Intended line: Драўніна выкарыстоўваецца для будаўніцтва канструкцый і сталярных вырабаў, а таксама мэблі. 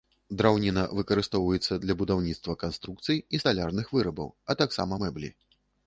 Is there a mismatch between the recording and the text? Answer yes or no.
no